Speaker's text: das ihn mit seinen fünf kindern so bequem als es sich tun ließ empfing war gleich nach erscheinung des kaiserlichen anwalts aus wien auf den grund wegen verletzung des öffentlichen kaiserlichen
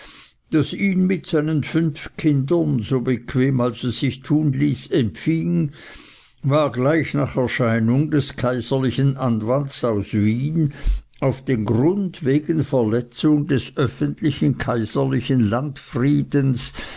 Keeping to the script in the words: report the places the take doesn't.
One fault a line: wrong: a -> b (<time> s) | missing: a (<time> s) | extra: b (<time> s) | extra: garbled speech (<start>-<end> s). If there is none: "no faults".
no faults